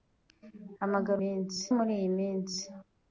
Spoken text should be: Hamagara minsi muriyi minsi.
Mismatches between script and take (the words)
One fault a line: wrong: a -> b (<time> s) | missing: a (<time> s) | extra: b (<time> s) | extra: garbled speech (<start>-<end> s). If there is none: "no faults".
no faults